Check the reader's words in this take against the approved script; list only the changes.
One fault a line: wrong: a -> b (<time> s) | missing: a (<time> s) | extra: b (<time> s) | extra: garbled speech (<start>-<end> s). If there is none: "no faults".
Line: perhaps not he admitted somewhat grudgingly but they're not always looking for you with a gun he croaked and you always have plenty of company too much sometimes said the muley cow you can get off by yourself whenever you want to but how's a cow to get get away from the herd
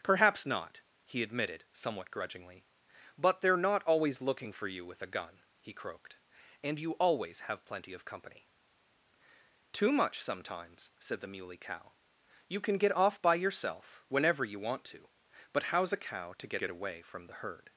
no faults